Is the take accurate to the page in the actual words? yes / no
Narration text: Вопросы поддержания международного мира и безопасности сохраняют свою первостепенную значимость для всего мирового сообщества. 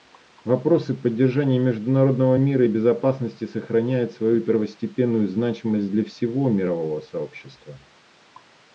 yes